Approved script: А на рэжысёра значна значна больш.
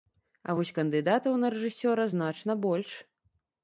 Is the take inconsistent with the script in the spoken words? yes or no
yes